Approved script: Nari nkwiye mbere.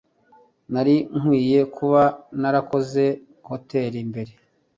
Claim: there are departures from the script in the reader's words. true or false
true